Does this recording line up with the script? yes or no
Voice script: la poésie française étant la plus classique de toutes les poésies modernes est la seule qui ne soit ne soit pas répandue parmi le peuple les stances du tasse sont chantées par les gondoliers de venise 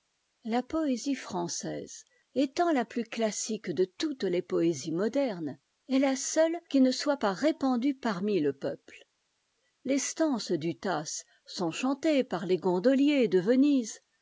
no